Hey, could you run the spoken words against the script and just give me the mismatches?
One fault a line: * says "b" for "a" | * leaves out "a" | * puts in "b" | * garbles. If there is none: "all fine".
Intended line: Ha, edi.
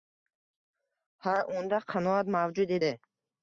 * puts in "unda qanoat mavjud"